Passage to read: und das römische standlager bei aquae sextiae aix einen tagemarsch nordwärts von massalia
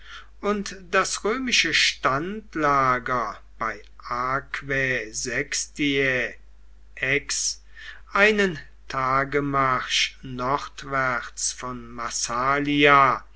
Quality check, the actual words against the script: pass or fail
pass